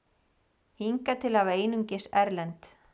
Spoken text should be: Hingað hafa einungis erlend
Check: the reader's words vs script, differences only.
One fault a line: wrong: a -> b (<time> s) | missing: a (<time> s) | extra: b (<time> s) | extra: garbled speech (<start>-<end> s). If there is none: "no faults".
extra: til (1.3 s)